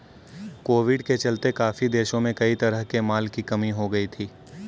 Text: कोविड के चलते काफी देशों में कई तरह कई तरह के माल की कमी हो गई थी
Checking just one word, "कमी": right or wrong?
right